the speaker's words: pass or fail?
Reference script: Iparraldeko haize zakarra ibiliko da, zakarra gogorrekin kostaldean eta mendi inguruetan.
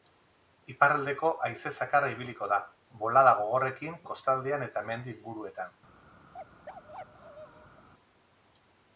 fail